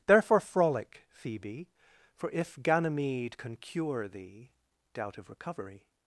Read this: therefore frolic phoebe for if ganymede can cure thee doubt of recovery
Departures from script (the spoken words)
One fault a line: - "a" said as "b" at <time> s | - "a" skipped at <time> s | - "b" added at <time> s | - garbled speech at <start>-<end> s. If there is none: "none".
none